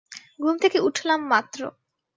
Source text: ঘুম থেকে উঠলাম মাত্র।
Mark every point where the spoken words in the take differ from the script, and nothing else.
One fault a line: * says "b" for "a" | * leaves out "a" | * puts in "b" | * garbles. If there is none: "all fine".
all fine